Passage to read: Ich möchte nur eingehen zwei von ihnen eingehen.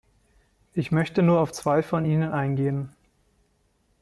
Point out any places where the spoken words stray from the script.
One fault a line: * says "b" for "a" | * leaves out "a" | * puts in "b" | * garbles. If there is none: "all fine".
* says "auf" for "eingehen"